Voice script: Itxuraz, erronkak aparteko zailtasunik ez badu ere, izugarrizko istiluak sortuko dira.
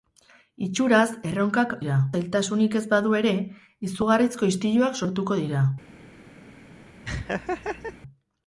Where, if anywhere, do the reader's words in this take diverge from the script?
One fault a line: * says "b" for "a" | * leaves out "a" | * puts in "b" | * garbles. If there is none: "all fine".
* says "dira" for "aparteko"